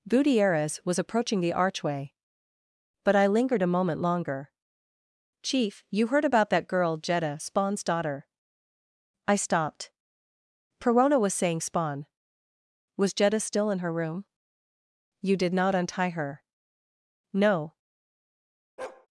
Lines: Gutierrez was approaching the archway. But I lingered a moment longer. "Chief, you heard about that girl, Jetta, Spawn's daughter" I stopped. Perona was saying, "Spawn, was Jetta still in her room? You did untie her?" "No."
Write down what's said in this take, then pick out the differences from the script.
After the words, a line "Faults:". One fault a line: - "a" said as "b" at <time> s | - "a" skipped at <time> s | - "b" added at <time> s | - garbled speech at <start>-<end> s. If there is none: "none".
Gutierrez was approaching the archway. But I lingered a moment longer. "Chief, you heard about that girl, Jetta, Spawn's daughter" I stopped. Perona was saying, "Spawn, was Jetta still in her room? You did not untie her?" "No."
Faults:
- "not" added at 15.5 s